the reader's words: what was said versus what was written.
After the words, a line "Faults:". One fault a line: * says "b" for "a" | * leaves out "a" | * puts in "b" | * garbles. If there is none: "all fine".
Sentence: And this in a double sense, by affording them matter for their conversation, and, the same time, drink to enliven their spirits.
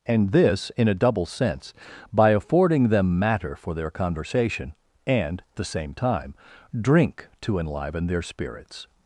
And this in a double sense, by affording them matter for their conversation, and, the same time, drink to enliven their spirits.
Faults:
all fine